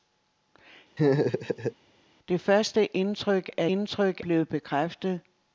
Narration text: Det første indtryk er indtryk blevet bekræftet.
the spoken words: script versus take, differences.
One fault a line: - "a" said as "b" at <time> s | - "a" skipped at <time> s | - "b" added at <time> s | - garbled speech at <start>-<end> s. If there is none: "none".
none